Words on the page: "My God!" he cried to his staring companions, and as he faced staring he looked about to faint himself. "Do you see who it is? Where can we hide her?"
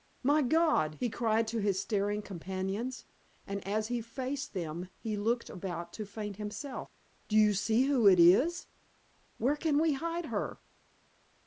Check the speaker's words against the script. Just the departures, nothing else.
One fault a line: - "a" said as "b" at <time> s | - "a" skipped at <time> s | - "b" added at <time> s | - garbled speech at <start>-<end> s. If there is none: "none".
- "staring" said as "them" at 4.5 s